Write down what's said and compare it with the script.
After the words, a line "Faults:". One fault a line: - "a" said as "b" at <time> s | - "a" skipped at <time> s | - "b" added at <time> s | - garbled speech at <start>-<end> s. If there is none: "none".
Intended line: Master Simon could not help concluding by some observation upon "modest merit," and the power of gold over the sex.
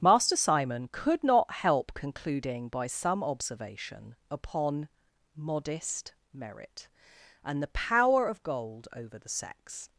Master Simon could not help concluding by some observation upon "modest merit," and the power of gold over the sex.
Faults:
none